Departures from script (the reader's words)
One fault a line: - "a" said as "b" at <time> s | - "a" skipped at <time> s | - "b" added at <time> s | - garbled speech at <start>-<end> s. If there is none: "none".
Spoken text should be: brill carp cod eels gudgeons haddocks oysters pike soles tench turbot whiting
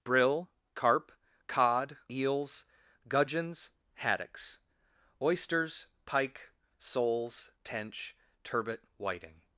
none